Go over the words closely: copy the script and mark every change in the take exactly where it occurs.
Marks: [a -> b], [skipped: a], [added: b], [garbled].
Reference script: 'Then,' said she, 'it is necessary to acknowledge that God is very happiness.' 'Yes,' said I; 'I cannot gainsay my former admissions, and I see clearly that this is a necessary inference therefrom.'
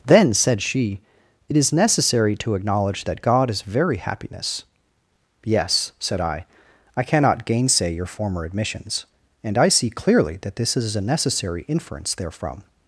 'Then,' said she, 'it is necessary to acknowledge that God is very happiness.' 'Yes,' said I; 'I cannot gainsay [my -> your] former admissions, and I see clearly that this is a necessary inference therefrom.'